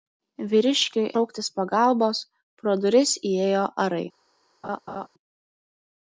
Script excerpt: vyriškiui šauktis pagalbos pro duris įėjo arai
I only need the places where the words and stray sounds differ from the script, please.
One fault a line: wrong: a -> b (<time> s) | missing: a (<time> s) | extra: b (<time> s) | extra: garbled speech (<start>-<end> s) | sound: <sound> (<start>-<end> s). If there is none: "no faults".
sound: laugh (4.6-5.1 s)